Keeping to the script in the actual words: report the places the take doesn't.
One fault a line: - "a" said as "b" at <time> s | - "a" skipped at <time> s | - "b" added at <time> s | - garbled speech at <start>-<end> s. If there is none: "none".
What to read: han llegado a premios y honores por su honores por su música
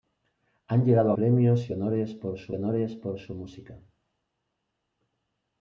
none